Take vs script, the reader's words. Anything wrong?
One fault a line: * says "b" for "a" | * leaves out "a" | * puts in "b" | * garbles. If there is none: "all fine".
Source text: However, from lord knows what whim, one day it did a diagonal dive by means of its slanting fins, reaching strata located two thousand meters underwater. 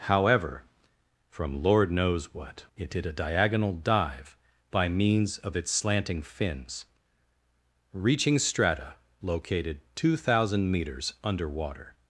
* leaves out "whim one day"